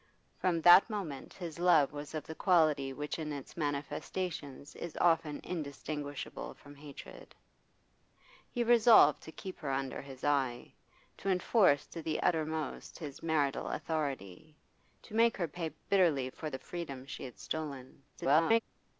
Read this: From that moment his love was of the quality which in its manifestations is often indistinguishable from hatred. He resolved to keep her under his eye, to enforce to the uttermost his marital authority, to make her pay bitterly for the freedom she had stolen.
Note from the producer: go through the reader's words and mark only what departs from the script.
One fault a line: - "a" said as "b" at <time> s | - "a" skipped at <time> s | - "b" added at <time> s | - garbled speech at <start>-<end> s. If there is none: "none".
- garbled speech at 18.1-18.6 s